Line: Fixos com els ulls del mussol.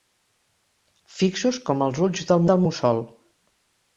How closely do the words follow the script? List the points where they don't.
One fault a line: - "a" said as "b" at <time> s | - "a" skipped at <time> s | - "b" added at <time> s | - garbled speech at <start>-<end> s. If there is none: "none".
- "del" added at 2.5 s